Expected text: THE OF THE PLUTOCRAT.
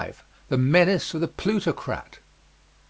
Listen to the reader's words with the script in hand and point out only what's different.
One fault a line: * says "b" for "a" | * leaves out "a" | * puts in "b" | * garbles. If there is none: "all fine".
* puts in "MENACE"